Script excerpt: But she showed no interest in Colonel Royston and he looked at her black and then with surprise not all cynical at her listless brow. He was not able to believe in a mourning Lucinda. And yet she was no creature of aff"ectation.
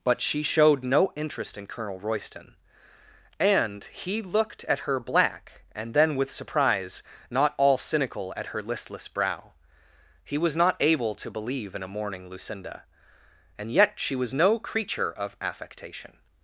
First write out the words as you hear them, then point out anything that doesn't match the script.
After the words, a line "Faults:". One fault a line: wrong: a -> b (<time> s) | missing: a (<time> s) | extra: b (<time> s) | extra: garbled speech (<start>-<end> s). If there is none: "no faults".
But she showed no interest in Colonel Royston and he looked at her black and then with surprise not all cynical at her listless brow. He was not able to believe in a mourning Lucinda. And yet she was no creature of aff"ectation.
Faults:
no faults